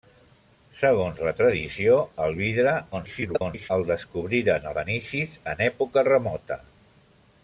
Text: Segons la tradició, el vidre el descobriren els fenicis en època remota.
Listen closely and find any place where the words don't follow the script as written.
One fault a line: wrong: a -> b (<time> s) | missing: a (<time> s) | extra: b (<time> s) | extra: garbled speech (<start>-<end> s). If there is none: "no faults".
extra: garbled speech (2.9-3.7 s)
missing: els (4.7 s)